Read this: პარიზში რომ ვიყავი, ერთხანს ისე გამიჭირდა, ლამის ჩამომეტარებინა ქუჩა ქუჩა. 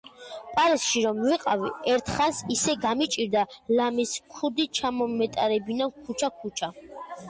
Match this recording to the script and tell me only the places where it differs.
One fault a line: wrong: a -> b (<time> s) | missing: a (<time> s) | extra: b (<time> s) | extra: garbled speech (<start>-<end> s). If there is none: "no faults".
extra: ქუდი (4.3 s)